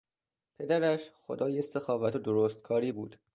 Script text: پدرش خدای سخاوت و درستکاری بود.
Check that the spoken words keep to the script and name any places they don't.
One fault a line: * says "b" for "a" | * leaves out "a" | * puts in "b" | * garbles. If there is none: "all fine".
all fine